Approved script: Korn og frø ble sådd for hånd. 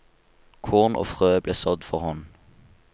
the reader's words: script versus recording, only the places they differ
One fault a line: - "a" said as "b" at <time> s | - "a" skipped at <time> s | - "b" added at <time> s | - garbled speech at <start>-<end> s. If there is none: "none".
none